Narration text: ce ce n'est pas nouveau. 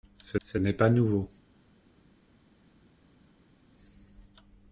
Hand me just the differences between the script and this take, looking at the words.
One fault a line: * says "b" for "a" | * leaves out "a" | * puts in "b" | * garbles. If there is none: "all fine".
all fine